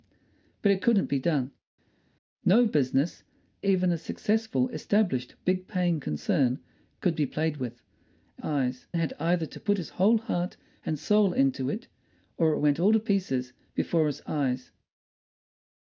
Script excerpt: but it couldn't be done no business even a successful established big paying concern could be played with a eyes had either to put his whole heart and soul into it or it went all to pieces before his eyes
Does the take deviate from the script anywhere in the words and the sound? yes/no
no